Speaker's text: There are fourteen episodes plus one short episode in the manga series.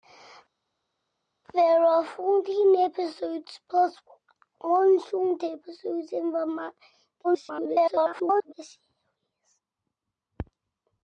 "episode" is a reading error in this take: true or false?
false